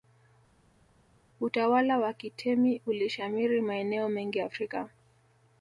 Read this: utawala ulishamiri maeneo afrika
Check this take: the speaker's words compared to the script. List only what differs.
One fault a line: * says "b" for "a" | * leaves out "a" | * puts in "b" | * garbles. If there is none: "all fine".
* puts in "wa kitemi"
* puts in "mengi"